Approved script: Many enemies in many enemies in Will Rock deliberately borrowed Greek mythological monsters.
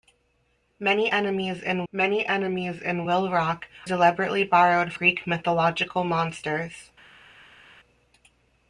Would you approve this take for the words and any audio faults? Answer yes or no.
yes